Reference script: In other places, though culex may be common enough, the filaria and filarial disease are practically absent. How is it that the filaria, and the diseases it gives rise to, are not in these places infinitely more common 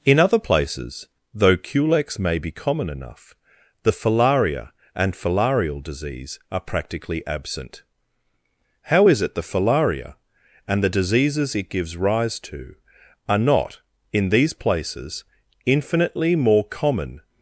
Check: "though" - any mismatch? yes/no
no